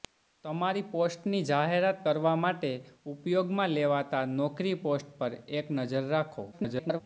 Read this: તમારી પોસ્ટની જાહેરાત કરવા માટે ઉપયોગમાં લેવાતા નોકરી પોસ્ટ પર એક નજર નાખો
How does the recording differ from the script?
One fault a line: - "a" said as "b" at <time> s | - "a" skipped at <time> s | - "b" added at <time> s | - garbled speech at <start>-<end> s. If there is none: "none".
- garbled speech at 6.5-7.0 s